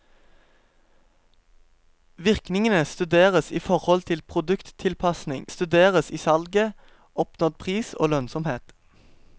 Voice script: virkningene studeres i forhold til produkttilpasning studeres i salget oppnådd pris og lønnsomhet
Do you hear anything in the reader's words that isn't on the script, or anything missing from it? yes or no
no